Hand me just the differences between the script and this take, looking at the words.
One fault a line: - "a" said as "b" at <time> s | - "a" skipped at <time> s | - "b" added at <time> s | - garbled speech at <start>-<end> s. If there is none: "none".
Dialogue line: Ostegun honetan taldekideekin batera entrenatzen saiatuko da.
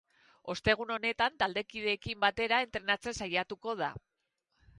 none